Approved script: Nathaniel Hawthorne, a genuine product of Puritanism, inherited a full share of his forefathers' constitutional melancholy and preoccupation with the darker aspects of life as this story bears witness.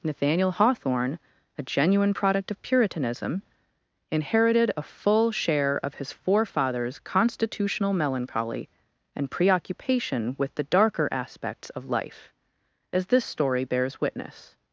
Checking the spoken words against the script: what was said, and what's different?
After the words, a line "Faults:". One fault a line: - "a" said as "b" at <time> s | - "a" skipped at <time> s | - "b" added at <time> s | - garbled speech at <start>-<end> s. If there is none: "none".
Nathaniel Hawthorne, a genuine product of Puritanism, inherited a full share of his forefathers' constitutional melancholy and preoccupation with the darker aspects of life as this story bears witness.
Faults:
none